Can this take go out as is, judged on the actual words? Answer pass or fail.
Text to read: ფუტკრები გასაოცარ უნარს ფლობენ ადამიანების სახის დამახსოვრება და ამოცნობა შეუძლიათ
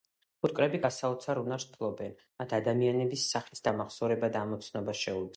fail